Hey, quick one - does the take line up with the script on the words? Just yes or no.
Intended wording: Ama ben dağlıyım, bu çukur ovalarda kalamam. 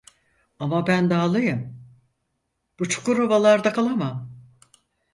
yes